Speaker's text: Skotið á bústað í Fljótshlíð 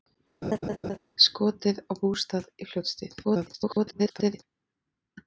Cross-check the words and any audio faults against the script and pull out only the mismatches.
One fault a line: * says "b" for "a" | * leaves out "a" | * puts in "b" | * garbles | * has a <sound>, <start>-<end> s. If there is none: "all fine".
* has a laugh, 0.4-1.0 s
* garbles